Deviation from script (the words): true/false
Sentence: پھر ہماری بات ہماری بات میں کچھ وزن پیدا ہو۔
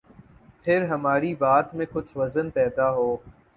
true